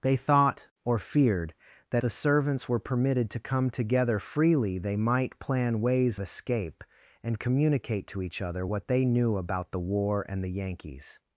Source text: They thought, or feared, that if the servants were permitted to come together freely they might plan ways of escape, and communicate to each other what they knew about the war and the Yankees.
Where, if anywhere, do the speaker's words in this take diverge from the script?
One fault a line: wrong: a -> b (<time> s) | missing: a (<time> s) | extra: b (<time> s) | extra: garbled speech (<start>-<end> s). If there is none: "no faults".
missing: if (2.0 s)
missing: of (6.2 s)